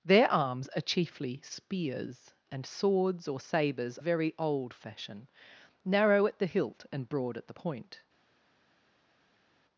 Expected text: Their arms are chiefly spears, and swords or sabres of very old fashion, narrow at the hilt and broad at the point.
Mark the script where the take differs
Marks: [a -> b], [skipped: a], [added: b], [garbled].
Their arms are chiefly spears, and swords or sabres [skipped: of] very old fashion, narrow at the hilt and broad at the point.